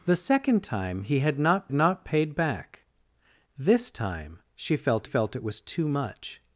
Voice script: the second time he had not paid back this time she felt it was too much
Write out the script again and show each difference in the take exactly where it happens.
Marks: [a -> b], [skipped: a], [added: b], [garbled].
the second time he had not [added: not] paid back this time she felt [added: felt] it was too much